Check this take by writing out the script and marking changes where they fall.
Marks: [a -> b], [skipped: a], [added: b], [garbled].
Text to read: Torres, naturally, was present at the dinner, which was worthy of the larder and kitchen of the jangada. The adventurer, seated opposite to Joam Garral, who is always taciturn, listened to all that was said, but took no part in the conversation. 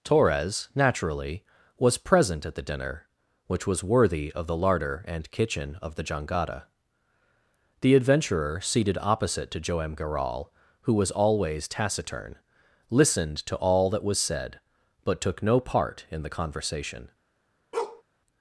Torres, naturally, was present at the dinner, which was worthy of the larder and kitchen of the jangada. The adventurer, seated opposite to Joam Garral, who [is -> was] always taciturn, listened to all that was said, but took no part in the conversation.